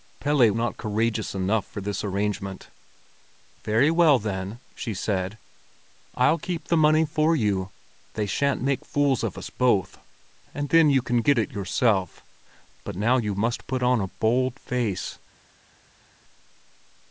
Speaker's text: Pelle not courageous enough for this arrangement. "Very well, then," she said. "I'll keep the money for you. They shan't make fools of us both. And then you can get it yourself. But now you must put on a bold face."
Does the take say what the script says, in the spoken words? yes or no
yes